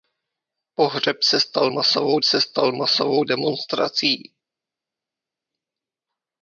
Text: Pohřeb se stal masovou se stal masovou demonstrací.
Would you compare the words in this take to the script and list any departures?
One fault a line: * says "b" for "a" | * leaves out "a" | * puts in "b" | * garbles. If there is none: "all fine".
all fine